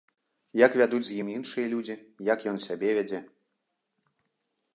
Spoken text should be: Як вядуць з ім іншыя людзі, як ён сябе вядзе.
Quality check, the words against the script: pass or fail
pass